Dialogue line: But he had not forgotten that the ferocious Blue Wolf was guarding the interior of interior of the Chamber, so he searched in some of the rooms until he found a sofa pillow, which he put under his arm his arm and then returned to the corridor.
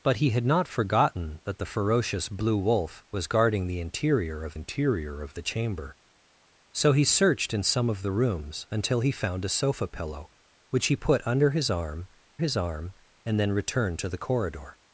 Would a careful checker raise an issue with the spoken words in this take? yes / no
no